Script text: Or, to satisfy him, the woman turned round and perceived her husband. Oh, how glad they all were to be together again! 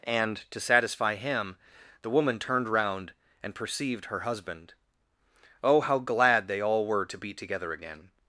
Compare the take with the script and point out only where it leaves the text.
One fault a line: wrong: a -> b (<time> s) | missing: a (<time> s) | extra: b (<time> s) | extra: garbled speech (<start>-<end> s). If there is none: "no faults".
wrong: Or -> And (0.0 s)